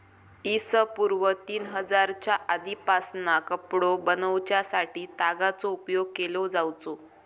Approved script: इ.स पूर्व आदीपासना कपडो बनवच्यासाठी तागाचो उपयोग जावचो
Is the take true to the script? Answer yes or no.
no